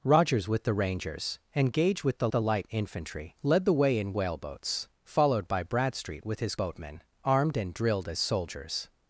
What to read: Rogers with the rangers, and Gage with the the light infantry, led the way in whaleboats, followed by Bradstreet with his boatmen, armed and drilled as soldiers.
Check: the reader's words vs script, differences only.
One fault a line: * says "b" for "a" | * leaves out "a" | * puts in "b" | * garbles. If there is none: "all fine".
all fine